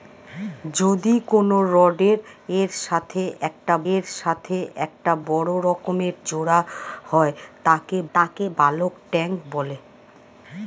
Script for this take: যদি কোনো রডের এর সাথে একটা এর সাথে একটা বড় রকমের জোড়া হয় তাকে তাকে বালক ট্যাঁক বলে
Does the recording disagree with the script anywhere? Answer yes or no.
no